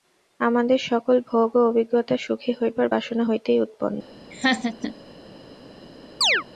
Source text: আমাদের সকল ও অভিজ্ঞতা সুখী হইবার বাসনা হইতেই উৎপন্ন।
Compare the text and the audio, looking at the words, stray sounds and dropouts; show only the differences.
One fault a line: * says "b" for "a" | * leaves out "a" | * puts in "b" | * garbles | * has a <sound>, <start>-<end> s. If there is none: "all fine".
* puts in "ভোগ"
* has a laugh, 4.3-5.0 s
* has a chirp, 6.2-6.4 s